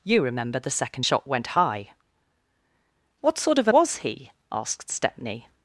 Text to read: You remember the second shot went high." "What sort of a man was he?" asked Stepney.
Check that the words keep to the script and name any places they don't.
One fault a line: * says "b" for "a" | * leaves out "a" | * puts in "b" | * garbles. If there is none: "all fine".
* leaves out "man"